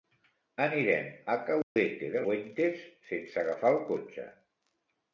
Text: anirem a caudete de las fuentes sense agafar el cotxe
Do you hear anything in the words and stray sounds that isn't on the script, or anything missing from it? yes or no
yes